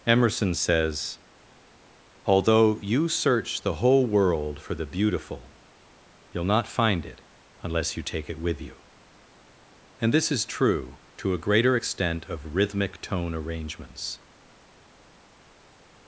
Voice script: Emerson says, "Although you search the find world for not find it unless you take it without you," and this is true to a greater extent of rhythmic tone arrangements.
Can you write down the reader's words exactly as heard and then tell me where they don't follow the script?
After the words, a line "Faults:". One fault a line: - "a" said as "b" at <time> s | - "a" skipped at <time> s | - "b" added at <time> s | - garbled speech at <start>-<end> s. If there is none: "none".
Emerson says, "Although you search the whole world for the beautiful you'll not find it unless you take it with you," and this is true to a greater extent of rhythmic tone arrangements.
Faults:
- "find" said as "whole" at 3.8 s
- "the beautiful you'll" added at 4.7 s
- "without" said as "with" at 8.4 s